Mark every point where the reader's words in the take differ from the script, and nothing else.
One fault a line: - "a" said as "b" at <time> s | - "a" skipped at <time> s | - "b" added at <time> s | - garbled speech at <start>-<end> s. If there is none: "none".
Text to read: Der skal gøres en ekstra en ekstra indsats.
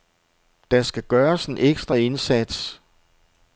- "en ekstra" skipped at 1.9 s